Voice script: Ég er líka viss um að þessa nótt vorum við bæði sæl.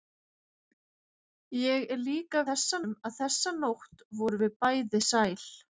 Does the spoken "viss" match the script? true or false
false